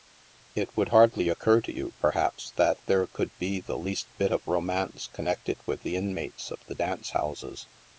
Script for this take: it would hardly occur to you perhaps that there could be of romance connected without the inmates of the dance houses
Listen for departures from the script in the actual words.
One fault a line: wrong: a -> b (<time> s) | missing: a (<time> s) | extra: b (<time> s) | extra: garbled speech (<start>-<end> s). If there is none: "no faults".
extra: the least bit (3.6 s)
wrong: without -> with (5.7 s)